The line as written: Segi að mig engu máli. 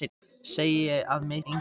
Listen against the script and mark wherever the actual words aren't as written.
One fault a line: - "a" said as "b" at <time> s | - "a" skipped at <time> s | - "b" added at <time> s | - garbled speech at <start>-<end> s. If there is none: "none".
none